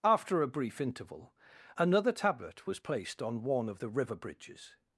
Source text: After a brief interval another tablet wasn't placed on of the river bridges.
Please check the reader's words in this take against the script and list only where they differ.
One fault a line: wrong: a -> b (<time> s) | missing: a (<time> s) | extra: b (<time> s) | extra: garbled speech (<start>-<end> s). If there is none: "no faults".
wrong: wasn't -> was (2.7 s)
extra: one (3.4 s)